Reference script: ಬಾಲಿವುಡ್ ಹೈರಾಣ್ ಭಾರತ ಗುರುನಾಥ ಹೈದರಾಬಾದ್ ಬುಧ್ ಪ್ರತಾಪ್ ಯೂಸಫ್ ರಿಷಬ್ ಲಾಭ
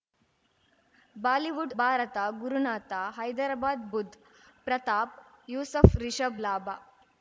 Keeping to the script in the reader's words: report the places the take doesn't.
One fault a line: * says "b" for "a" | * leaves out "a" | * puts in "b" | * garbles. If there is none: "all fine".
* leaves out "ಹೈರಾಣ್"